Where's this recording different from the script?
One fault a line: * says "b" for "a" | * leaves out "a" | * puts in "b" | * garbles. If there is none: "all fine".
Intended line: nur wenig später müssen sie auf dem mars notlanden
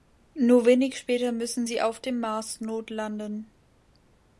all fine